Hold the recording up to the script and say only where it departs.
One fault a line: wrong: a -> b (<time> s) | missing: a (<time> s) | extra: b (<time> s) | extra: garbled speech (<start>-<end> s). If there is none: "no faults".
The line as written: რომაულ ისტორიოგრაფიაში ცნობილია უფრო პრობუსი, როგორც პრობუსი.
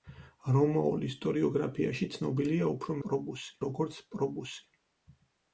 no faults